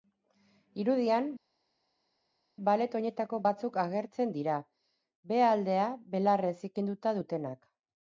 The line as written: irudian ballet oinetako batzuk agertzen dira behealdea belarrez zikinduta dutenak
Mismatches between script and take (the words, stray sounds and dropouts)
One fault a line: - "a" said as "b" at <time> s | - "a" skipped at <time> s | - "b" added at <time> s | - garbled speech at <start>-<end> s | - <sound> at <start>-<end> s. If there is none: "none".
none